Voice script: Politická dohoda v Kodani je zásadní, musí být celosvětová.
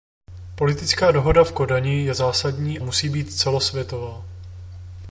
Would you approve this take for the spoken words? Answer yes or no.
yes